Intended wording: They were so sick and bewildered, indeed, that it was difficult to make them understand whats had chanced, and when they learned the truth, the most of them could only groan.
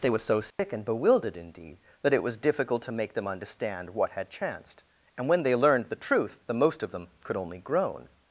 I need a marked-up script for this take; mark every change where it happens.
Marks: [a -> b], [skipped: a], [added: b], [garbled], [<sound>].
They were so sick [dropout] and bewildered, indeed, that it was difficult to make them understand [whats -> what] had chanced, and when they learned the truth, the most of them could only groan.